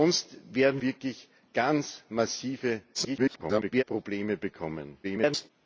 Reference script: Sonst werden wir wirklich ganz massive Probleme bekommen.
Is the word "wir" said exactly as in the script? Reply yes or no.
no